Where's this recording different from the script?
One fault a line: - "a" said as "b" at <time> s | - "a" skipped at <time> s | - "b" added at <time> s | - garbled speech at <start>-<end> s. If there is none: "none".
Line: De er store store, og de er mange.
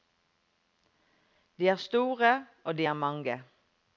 - "store" skipped at 2.5 s